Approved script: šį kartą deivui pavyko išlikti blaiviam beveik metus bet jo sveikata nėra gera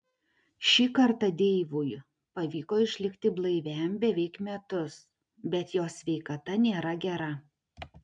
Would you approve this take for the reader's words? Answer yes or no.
yes